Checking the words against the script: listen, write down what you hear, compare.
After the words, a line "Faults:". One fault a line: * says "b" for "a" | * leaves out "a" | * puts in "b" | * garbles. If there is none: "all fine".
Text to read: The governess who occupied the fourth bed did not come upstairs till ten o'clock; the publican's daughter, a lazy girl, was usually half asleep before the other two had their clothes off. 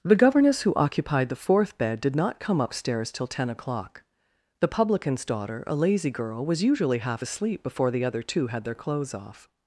The governess who occupied the fourth bed did not come upstairs till ten o'clock; the publican's daughter, a lazy girl, was usually half asleep before the other two had their clothes off.
Faults:
all fine